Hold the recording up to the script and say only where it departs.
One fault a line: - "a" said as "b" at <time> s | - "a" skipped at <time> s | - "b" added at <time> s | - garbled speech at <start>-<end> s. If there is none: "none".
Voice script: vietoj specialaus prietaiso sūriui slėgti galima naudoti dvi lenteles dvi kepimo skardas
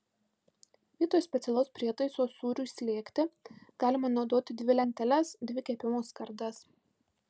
none